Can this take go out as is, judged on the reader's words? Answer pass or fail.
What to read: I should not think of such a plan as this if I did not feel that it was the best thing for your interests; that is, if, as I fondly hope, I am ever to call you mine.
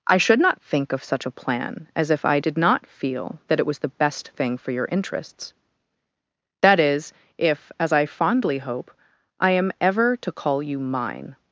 fail